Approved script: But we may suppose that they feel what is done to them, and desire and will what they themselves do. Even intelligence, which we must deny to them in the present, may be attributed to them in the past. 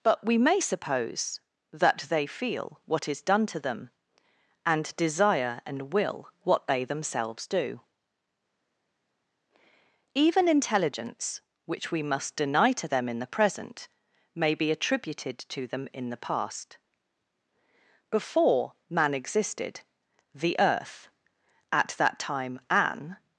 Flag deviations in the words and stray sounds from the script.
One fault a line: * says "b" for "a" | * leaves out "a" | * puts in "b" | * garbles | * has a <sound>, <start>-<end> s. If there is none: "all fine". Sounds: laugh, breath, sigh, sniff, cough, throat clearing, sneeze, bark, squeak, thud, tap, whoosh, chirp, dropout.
* puts in "Before man existed the earth at that time an"